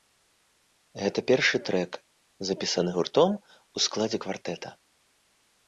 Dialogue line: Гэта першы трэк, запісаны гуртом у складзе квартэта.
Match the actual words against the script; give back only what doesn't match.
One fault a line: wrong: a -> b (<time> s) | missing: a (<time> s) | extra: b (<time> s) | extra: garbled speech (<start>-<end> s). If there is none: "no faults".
no faults